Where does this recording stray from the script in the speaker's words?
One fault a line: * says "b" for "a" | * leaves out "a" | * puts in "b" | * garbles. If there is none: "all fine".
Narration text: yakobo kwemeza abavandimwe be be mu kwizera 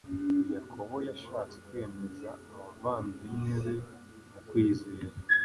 * puts in "yashatse"
* leaves out "be"